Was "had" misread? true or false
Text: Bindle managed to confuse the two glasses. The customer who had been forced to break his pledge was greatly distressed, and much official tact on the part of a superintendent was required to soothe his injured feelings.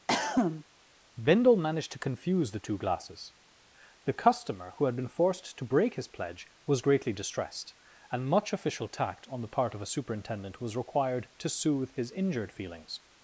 false